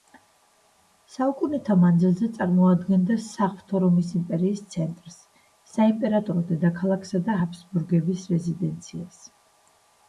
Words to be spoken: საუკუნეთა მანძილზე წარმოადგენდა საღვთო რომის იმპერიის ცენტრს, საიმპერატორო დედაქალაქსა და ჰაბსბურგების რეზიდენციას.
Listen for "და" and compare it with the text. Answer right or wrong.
right